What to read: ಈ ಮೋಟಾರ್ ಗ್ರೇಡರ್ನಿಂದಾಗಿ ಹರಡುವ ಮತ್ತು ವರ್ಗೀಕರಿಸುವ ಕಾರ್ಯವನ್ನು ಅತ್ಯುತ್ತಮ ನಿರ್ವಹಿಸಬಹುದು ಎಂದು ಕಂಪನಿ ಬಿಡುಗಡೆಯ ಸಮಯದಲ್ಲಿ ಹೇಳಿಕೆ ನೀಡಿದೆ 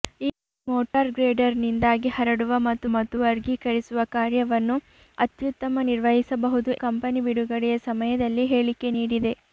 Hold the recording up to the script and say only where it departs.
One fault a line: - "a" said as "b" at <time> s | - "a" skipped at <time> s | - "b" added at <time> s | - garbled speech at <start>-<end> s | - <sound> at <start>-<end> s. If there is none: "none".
- dropout at 0.9-0.9 s
- "ಮತ್ತು" added at 2.9 s
- "ಎಂದು" skipped at 6.7 s